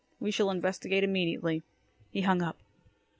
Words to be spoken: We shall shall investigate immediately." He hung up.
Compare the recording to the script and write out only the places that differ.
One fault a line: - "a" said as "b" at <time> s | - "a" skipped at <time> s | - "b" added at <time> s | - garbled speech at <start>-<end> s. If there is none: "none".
- "shall" skipped at 0.5 s